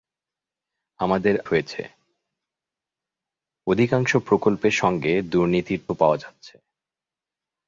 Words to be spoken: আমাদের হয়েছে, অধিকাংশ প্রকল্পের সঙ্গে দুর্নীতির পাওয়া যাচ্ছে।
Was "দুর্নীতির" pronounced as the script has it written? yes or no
yes